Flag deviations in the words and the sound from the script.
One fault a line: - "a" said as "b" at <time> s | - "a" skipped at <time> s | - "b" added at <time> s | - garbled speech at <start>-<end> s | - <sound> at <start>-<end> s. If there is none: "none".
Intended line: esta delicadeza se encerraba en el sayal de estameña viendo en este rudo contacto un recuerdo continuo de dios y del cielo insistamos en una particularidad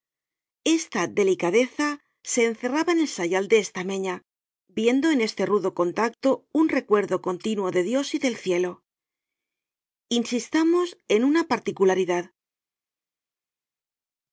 none